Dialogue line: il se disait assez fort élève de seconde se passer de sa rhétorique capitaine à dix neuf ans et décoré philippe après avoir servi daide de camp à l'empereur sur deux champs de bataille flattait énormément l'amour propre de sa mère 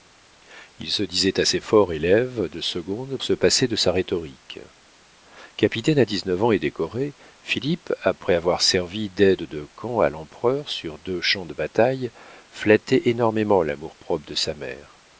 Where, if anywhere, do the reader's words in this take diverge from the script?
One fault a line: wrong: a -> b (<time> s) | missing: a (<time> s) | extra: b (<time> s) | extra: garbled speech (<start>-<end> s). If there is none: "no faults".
no faults